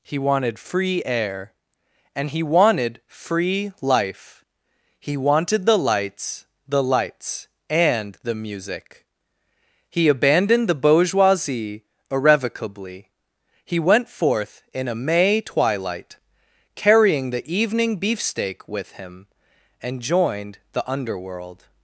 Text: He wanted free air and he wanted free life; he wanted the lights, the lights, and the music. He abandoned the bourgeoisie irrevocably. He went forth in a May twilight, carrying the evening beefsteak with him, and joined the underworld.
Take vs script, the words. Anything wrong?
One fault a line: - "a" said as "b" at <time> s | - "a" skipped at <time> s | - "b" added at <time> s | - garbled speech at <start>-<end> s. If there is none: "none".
none